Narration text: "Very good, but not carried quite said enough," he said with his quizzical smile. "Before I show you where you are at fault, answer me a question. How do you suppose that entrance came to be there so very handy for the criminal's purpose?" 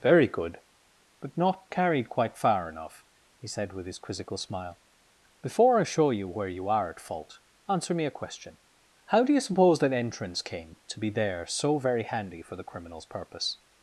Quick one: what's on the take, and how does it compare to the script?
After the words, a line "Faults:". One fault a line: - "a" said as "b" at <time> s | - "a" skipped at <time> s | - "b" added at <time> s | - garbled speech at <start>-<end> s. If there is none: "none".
"Very good, but not carried quite far enough," he said with his quizzical smile. "Before I show you where you are at fault, answer me a question. How do you suppose that entrance came to be there so very handy for the criminal's purpose?"
Faults:
- "said" said as "far" at 2.4 s